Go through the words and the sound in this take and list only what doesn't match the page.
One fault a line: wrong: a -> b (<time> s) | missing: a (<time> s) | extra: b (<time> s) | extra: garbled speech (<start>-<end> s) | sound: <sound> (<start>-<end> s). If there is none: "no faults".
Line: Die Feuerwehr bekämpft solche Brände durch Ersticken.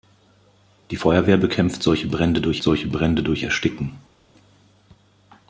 extra: solche Brände durch (2.6 s)